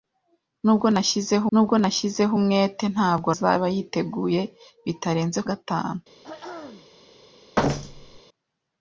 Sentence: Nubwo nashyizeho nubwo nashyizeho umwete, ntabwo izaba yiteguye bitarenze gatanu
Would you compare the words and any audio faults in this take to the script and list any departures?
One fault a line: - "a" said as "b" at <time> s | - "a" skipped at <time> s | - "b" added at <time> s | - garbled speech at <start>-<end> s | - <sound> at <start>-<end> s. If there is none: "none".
- throat clearing at 6.2-6.9 s
- thud at 7.6-8.2 s